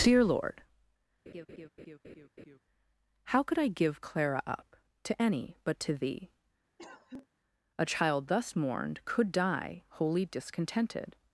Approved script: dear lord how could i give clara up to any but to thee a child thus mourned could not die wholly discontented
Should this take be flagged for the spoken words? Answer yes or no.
yes